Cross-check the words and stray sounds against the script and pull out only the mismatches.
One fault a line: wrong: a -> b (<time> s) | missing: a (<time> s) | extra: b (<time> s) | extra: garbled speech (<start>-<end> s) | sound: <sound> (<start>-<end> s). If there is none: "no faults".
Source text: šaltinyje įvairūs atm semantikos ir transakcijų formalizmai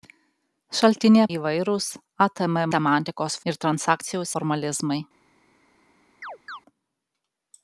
sound: chirp (6.2-6.6 s)